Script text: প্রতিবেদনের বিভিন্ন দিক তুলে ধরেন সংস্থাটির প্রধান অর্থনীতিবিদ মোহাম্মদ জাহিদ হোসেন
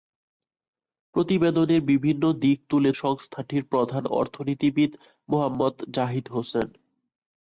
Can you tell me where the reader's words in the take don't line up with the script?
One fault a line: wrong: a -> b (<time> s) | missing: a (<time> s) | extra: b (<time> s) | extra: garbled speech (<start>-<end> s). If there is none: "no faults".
missing: ধরেন (2.9 s)